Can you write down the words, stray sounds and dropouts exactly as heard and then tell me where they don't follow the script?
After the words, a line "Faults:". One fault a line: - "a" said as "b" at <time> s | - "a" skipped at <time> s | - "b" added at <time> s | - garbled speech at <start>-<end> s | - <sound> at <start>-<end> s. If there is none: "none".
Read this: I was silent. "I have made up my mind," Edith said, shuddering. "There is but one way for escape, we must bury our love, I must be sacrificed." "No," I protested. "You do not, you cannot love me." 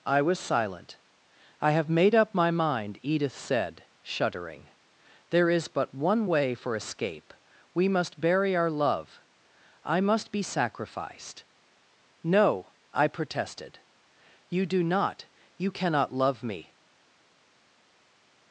I was silent. "I have made up my mind," Edith said, shuddering. "There is but one way for escape, we must bury our love, I must be sacrificed." "No," I protested. "You do not, you cannot love me."
Faults:
none